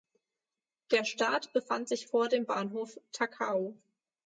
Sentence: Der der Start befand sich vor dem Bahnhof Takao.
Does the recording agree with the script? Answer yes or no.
no